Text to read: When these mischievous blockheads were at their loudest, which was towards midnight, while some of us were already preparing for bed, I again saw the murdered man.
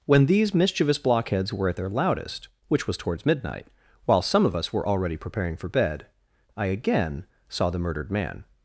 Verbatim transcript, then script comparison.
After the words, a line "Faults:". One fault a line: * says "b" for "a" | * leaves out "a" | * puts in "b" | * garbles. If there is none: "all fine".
When these mischievous blockheads were at their loudest, which was towards midnight, while some of us were already preparing for bed, I again saw the murdered man.
Faults:
all fine